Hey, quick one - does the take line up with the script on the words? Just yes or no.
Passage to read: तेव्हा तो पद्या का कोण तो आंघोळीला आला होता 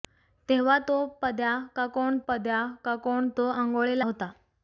no